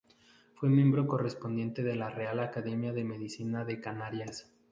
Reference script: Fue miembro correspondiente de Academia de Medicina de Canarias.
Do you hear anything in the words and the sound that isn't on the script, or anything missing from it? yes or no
yes